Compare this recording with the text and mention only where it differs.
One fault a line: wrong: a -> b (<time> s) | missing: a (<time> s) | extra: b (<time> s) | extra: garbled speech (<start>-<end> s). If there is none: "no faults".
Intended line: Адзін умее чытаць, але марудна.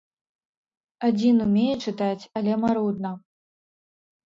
no faults